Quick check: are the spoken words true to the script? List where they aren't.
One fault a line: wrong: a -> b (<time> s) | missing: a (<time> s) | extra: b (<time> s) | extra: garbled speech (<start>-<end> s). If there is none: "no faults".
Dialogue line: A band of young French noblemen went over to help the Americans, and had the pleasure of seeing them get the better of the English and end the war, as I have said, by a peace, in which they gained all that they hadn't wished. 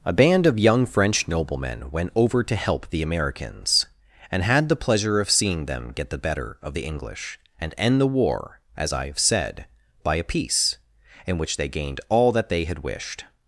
wrong: hadn't -> had (12.6 s)